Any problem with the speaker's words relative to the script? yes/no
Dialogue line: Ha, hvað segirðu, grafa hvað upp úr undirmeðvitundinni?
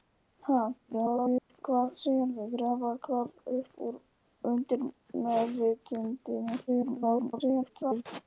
yes